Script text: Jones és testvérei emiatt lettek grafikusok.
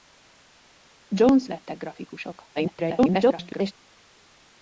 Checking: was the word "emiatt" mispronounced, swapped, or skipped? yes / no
yes